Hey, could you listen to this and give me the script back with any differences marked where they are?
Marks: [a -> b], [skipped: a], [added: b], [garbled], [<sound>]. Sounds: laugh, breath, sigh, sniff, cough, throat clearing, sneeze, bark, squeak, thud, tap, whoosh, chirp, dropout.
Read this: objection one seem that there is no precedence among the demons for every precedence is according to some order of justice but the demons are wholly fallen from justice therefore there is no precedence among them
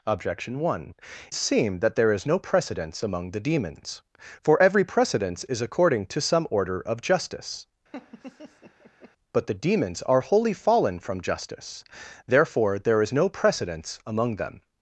objection one seem that there is no precedence among the demons for every precedence is according to some order of justice [laugh] but the demons are wholly fallen from justice therefore there is no precedence among them